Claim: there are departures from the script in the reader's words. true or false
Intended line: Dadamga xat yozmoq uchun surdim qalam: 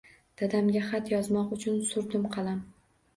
false